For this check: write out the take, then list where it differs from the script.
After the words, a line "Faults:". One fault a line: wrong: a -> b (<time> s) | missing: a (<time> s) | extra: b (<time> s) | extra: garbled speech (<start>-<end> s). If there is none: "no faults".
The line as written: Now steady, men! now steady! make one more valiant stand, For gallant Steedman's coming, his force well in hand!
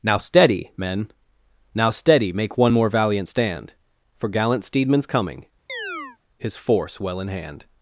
Now steady, men! now steady! make one more valiant stand, For gallant Steedman's coming, his force well in hand!
Faults:
no faults